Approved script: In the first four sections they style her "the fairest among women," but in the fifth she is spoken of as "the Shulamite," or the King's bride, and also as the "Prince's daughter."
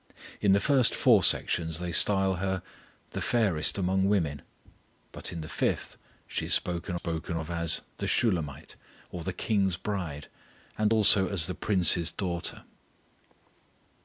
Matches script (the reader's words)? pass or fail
fail